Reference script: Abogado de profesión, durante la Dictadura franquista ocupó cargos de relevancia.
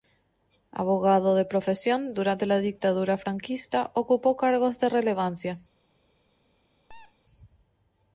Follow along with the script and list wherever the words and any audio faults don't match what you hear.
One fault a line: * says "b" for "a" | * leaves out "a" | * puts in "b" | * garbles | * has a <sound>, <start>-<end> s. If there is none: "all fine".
* has a squeak, 6.9-7.2 s